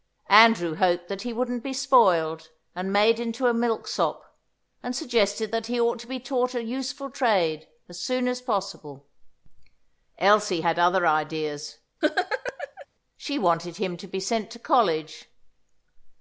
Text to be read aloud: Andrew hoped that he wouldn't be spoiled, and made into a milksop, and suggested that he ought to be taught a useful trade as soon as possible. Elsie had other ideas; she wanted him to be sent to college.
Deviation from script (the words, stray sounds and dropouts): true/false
true